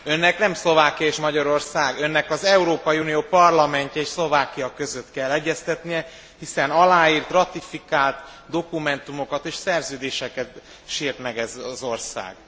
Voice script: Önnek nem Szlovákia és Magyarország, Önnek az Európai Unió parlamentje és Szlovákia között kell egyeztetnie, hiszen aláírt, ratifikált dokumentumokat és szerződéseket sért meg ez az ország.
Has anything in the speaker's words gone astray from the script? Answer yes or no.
no